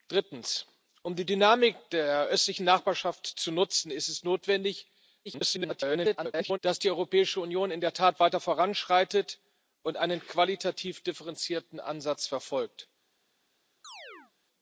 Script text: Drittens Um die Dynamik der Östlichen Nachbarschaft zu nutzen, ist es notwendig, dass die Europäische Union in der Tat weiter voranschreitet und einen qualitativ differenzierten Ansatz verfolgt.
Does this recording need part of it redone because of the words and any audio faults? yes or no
yes